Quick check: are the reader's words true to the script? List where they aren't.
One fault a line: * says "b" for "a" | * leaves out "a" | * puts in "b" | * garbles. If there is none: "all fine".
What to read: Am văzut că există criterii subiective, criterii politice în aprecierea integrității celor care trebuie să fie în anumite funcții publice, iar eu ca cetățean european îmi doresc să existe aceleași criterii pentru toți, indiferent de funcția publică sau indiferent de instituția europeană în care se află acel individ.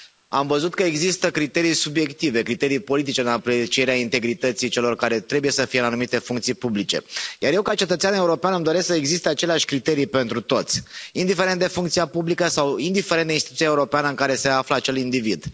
all fine